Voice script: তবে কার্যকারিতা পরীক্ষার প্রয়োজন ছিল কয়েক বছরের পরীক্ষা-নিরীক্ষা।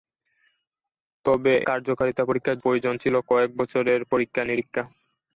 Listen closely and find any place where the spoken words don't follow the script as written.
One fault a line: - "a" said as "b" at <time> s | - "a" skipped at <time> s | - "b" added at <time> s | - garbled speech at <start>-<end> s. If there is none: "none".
none